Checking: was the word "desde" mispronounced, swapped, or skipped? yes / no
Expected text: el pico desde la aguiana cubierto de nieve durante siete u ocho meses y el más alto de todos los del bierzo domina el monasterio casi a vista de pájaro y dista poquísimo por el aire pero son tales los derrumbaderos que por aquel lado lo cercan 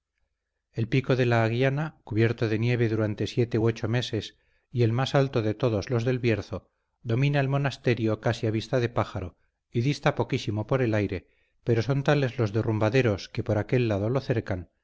yes